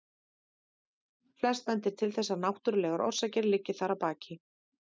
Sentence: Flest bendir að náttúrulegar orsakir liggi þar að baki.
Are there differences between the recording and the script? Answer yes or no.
yes